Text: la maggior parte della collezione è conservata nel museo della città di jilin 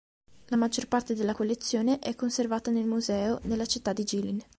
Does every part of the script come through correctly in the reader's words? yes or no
yes